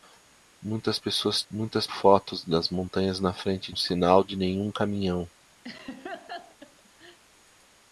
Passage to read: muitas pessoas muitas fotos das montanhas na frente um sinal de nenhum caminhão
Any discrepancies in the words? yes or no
no